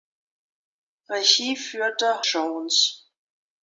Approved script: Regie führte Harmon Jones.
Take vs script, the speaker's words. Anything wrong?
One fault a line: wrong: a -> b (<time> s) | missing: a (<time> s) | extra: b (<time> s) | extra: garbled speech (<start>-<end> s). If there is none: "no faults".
missing: Harmon (2.2 s)